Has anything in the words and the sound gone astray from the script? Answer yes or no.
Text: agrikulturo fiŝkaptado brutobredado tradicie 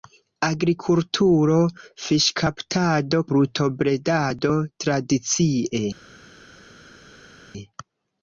no